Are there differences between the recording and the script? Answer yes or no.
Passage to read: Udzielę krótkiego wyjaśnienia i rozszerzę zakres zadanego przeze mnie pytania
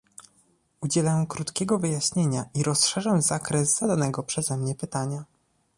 no